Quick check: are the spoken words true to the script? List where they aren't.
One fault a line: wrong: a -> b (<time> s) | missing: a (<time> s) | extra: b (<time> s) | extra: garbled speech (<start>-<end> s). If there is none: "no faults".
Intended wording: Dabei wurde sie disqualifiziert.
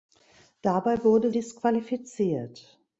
missing: sie (1.3 s)